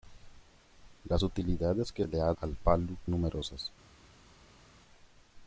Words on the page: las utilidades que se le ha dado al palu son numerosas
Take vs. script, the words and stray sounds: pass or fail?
fail